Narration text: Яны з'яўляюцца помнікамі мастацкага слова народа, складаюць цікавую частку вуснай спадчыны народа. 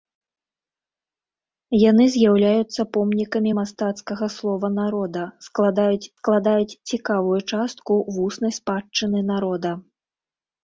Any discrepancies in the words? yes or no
yes